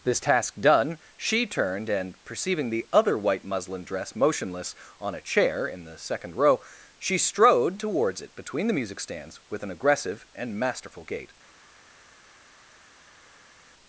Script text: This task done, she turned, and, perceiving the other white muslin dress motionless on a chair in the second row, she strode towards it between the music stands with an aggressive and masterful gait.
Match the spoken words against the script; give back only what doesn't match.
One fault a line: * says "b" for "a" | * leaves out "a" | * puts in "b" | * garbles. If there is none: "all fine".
all fine